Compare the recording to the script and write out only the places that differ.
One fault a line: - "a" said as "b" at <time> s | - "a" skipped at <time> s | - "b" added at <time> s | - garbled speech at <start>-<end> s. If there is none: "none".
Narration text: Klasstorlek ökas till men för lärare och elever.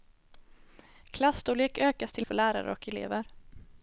- "men" skipped at 2.3 s